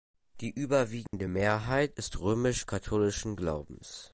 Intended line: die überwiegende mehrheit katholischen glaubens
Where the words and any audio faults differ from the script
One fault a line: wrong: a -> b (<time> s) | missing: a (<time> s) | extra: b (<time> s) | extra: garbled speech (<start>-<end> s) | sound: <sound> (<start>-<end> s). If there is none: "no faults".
sound: dropout (1.1-1.1 s)
extra: ist römisch (1.9 s)